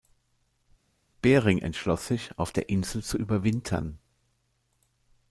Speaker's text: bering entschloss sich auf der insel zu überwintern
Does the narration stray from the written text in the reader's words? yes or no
no